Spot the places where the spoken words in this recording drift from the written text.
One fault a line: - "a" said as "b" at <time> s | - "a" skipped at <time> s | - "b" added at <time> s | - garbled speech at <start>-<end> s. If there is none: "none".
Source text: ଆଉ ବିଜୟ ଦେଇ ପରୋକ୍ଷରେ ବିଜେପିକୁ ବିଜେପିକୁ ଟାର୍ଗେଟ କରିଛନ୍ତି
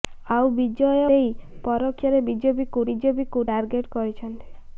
none